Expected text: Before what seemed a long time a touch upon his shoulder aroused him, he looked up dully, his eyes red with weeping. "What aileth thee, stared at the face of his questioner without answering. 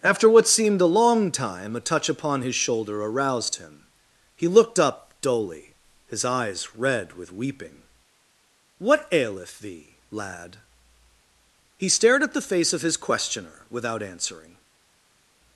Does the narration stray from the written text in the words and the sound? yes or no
yes